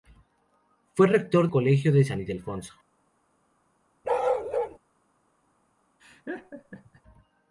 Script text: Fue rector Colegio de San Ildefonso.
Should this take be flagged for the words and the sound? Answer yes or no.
yes